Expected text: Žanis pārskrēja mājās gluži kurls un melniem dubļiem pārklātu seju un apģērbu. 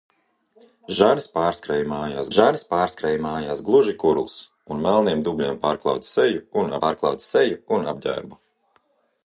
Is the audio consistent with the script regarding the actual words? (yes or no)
no